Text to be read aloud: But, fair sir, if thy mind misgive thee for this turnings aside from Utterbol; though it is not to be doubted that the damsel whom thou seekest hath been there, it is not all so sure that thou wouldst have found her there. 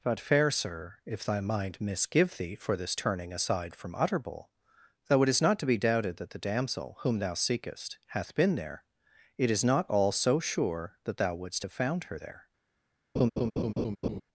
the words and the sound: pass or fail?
fail